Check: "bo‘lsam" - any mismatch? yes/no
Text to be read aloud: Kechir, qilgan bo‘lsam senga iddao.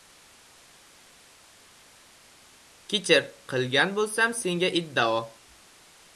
no